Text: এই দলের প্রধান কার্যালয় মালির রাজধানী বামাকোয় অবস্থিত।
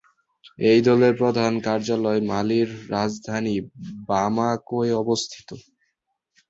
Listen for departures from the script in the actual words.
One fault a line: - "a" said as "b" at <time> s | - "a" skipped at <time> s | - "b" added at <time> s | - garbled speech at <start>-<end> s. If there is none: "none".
none